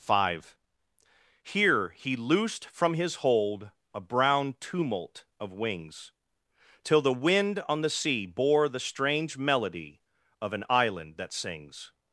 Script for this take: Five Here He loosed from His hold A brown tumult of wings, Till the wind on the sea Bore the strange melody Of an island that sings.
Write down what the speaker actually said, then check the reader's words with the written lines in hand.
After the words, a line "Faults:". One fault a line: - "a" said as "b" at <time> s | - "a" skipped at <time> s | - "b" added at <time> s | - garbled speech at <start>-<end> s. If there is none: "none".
Five Here He loosed from His hold A brown tumult of wings, Till the wind on the sea Bore the strange melody Of an island that sings.
Faults:
none